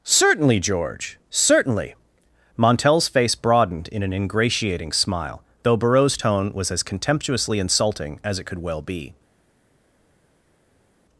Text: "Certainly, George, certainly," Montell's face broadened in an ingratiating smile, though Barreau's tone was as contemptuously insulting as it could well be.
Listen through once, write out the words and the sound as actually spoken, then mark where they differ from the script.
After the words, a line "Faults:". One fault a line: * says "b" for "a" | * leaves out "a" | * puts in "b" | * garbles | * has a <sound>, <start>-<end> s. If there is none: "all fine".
"Certainly, George, certainly," Montell's face broadened in an ingratiating smile, though Barreau's tone was as contemptuously insulting as it could well be.
Faults:
all fine